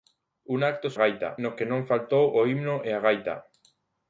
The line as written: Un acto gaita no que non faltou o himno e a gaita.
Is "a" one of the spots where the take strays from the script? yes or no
no